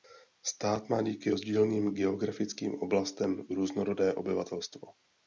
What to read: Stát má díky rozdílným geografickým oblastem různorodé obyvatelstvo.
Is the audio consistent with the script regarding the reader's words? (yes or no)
yes